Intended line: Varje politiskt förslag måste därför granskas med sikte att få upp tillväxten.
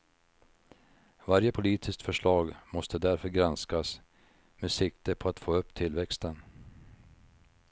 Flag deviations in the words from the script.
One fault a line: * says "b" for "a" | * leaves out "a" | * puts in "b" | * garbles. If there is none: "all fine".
* puts in "på"